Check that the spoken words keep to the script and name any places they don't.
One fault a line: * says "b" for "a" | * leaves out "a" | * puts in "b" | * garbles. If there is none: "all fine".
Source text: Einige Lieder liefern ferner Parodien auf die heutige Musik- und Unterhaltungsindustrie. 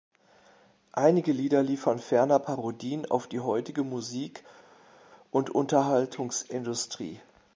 all fine